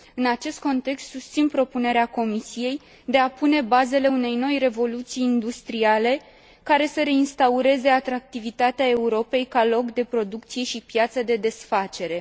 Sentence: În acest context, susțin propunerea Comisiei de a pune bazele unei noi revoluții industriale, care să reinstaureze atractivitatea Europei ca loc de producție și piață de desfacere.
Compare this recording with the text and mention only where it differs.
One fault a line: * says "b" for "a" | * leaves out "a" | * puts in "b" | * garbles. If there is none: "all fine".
all fine